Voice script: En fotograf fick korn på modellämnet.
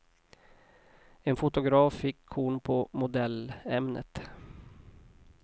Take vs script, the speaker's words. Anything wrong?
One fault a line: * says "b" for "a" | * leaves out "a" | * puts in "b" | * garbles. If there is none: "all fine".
all fine